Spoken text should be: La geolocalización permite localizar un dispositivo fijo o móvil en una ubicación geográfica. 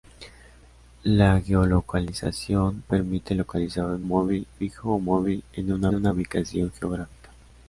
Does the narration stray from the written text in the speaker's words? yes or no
yes